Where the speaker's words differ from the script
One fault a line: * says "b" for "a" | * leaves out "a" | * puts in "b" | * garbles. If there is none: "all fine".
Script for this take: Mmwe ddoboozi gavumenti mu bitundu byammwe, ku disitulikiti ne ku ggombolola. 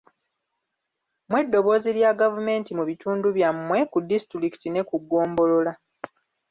* puts in "lya"